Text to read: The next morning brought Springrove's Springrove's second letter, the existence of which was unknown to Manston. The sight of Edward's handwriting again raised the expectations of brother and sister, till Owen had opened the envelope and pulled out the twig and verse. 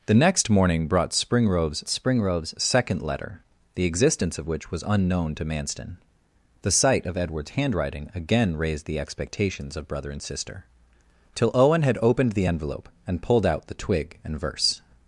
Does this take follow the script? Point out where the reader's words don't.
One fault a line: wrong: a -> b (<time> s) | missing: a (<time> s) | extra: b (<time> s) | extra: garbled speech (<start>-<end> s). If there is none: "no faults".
no faults